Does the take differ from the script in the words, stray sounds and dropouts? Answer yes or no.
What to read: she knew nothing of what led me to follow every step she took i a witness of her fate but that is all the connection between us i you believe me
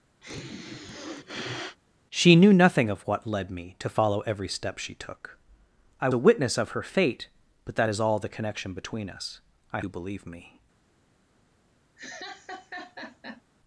yes